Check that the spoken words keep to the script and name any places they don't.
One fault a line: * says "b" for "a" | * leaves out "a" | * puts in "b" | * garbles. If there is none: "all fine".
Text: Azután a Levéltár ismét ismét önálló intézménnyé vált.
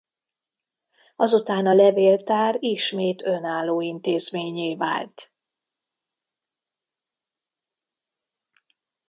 * leaves out "ismét"